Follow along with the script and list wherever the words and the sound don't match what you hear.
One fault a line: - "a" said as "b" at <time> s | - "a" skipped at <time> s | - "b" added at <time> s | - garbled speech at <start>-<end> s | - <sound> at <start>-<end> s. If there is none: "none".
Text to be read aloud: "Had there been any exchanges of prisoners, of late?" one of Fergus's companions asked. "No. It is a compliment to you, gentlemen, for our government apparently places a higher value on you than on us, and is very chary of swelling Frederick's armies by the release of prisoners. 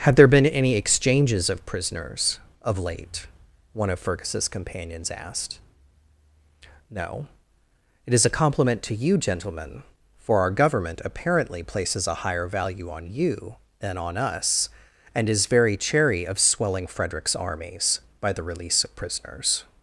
none